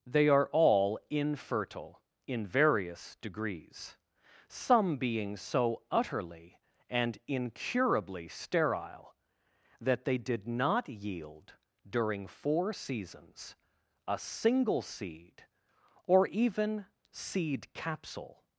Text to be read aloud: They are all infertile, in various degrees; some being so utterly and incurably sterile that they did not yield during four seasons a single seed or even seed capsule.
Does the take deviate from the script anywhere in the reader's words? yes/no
no